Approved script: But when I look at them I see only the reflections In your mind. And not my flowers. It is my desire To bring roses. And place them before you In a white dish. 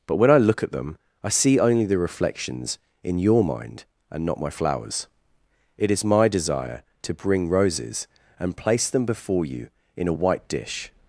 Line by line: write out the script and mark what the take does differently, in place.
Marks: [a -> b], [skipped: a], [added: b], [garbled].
But when I look at them I see only the reflections In your mind. And not my flowers. It is my desire To bring roses. And place them before you In a white dish.